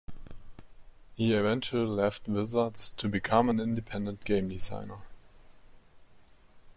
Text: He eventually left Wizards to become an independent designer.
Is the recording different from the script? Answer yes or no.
yes